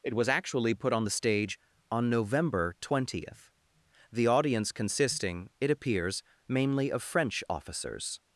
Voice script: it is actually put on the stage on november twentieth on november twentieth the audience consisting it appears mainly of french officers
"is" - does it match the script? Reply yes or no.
no